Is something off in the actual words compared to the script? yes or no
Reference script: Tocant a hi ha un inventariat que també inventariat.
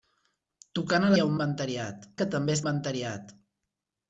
no